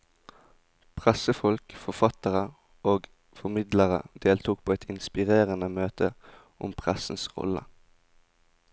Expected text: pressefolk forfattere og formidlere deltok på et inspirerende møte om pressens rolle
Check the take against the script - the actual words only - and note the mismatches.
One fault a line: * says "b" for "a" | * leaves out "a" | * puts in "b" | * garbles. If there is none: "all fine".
all fine